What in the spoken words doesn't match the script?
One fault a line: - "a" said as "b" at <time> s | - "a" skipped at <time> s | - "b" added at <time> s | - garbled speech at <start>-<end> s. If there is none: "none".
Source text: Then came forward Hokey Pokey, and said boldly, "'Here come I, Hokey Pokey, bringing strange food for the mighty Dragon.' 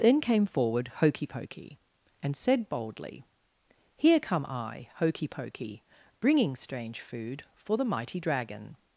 none